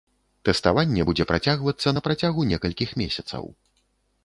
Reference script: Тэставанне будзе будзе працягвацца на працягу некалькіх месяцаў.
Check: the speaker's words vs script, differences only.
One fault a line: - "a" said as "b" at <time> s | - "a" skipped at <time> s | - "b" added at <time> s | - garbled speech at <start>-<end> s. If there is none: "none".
- "будзе" skipped at 1.3 s